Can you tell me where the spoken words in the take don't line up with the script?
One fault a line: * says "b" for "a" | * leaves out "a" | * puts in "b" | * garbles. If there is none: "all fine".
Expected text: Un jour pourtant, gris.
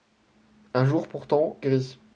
all fine